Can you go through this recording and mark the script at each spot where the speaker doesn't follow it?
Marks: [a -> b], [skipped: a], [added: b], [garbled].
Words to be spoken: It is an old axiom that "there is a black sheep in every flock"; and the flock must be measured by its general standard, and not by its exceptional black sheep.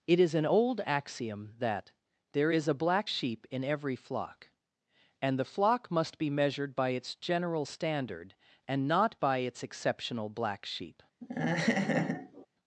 It is an old axiom that "there is a black sheep in every flock"; and the flock must be measured by its general standard, and not by its exceptional black sheep.